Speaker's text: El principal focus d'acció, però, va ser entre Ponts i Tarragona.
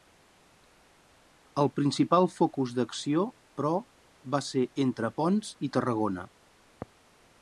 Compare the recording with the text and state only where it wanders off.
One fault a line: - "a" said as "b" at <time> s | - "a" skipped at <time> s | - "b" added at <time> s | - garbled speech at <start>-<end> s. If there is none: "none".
none